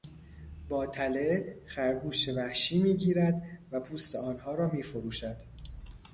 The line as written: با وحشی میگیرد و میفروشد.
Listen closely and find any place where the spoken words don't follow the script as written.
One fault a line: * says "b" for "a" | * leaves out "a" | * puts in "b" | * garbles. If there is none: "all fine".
* puts in "تله خرگوش"
* puts in "پوست آنها را"